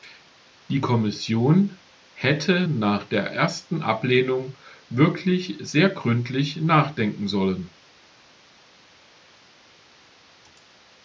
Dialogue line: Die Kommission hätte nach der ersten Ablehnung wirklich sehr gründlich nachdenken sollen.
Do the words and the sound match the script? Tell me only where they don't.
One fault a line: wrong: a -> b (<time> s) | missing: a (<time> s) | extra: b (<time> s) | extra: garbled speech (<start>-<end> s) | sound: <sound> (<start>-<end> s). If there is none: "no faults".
no faults